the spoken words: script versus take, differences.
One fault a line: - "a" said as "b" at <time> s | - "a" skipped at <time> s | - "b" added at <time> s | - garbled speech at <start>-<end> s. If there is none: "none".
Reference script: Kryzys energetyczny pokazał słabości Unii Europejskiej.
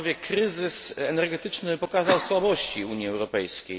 none